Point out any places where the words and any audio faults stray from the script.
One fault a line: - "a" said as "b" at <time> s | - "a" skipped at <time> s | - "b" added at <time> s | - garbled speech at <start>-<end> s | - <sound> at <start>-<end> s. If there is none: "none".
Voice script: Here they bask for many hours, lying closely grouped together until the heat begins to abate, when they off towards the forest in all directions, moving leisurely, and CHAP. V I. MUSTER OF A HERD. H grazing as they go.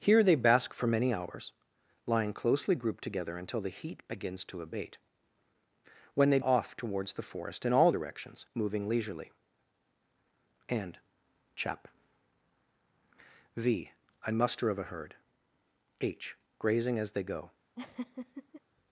- laugh at 17.8-18.6 s